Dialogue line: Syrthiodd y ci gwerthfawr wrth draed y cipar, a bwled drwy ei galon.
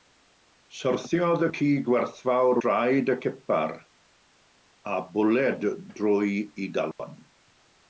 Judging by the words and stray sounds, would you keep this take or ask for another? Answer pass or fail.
fail